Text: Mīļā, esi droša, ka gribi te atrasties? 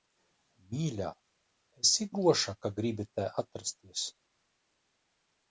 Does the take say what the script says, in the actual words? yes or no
yes